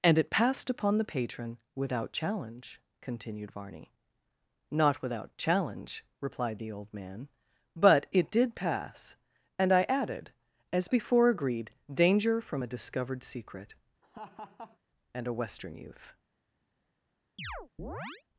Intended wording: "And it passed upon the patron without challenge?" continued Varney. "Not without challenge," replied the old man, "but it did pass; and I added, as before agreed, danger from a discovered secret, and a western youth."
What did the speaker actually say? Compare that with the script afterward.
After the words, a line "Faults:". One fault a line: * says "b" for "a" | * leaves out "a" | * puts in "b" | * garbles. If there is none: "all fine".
"And it passed upon the patron without challenge?" continued Varney. "Not without challenge," replied the old man, "but it did pass; and I added, as before agreed, danger from a discovered secret, and a western youth."
Faults:
all fine